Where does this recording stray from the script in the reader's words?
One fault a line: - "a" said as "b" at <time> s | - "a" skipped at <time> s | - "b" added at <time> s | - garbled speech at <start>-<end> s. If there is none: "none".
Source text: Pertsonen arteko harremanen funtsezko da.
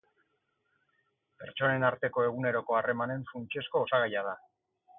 - "eguneroko" added at 2.3 s
- "osagaia" added at 3.8 s